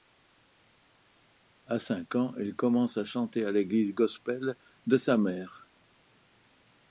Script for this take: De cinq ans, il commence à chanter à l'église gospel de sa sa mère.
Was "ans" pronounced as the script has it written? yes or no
yes